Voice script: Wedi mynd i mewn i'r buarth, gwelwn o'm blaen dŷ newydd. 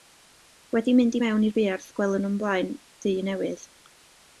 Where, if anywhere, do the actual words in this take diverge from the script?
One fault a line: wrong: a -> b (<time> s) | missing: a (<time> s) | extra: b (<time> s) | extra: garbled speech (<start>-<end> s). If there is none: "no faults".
no faults